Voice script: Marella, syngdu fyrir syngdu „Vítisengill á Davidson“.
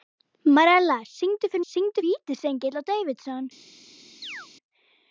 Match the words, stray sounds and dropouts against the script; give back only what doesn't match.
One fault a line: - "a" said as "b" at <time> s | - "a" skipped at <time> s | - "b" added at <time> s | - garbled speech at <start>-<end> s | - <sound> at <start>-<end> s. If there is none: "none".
- chirp at 4.2-4.5 s